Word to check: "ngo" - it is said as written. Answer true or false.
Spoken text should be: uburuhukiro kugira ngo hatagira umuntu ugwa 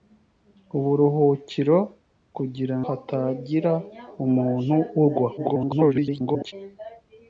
false